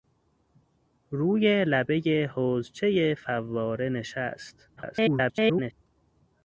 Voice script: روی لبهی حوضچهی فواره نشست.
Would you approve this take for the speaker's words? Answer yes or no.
no